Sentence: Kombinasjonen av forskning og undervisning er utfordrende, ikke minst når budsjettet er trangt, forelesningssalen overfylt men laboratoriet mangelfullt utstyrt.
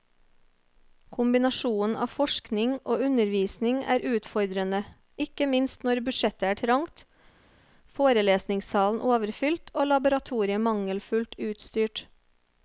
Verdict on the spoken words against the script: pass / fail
fail